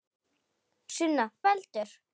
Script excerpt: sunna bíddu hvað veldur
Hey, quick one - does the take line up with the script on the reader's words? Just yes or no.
no